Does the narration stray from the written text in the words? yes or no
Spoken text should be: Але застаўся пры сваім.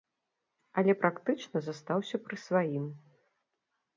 yes